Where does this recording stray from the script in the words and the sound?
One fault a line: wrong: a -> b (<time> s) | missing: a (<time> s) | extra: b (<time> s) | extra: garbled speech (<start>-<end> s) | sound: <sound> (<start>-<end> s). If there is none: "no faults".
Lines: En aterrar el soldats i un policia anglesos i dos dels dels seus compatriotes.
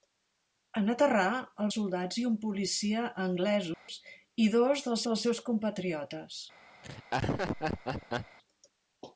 sound: dropout (3.7-3.9 s)
sound: laugh (6.8-8.4 s)